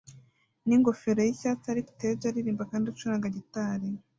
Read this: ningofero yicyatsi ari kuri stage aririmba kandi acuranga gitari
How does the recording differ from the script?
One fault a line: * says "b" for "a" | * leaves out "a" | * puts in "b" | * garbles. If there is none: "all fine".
* leaves out "kuri"